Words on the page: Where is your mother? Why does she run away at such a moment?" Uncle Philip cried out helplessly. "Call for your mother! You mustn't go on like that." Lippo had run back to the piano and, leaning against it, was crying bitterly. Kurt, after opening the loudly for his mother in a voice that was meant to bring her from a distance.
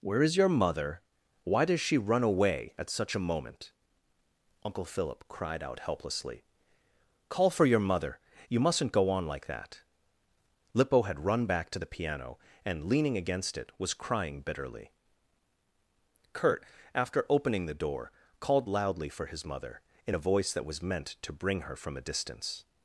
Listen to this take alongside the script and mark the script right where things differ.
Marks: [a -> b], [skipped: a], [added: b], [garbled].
Where is your mother? Why does she run away at such a moment?" Uncle Philip cried out helplessly. "Call for your mother! You mustn't go on like that." Lippo had run back to the piano and, leaning against it, was crying bitterly. Kurt, after opening the [added: door called] loudly for his mother in a voice that was meant to bring her from a distance.